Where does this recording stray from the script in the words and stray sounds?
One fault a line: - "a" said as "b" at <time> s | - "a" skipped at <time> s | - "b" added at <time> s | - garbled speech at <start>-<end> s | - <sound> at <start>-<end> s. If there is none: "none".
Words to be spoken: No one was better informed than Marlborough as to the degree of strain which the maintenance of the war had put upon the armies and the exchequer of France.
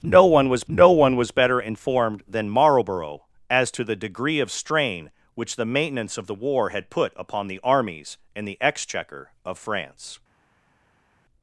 - "no one was" added at 0.7 s